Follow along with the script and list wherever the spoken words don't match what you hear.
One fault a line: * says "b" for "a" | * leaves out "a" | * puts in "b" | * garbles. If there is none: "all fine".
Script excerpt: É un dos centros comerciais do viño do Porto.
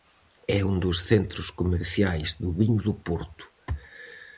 all fine